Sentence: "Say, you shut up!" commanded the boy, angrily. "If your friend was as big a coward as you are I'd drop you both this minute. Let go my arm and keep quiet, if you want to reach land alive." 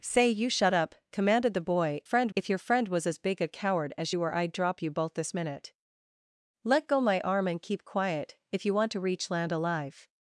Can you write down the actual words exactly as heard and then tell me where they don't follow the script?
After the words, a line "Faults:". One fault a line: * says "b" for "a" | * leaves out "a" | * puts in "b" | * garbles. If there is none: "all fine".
"Say, you shut up!" commanded the boy, friend. "If your friend was as big a coward as you are I'd drop you both this minute. Let go my arm and keep quiet, if you want to reach land alive."
Faults:
* says "friend" for "angrily"